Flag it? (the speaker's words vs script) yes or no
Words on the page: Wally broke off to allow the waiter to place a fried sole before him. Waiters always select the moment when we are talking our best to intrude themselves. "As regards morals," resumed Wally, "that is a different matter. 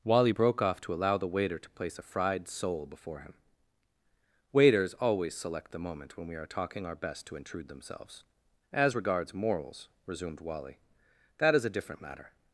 no